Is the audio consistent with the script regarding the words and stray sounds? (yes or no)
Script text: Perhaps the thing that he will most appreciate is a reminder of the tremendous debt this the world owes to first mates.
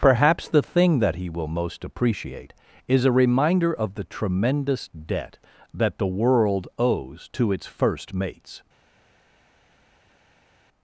no